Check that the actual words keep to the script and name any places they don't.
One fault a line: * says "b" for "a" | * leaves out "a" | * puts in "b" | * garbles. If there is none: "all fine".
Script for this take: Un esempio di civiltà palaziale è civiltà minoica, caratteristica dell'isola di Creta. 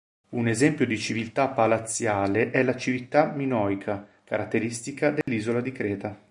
* puts in "la"